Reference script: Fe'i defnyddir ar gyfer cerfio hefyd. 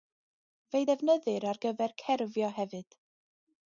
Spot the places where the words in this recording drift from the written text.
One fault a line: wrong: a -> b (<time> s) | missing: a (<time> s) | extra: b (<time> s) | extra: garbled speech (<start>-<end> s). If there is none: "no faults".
no faults